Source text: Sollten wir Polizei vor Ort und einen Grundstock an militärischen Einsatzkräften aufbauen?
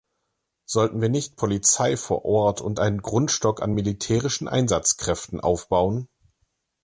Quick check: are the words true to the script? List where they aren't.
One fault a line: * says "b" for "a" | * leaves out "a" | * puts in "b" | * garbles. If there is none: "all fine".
* puts in "nicht"